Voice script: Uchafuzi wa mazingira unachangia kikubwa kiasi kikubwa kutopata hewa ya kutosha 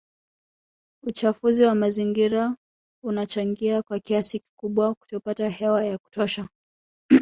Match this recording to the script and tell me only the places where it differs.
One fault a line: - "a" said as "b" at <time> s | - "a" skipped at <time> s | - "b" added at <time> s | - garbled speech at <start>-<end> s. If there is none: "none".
- "kikubwa" said as "kwa" at 3.8 s